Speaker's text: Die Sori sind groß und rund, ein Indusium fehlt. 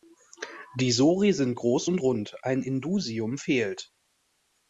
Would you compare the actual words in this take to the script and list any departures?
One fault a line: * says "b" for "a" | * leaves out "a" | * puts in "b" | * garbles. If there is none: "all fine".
all fine